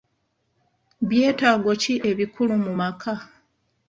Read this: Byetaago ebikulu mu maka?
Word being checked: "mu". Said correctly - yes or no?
yes